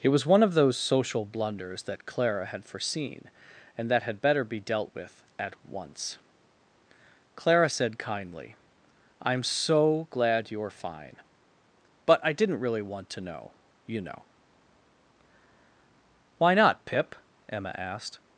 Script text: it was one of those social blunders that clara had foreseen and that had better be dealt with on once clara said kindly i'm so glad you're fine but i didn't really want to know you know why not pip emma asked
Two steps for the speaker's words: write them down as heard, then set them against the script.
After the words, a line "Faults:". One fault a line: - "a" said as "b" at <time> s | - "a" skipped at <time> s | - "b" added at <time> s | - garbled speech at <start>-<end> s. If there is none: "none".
it was one of those social blunders that clara had foreseen and that had better be dealt with at once clara said kindly i'm so glad you're fine but i didn't really want to know you know why not pip emma asked
Faults:
- "on" said as "at" at 5.4 s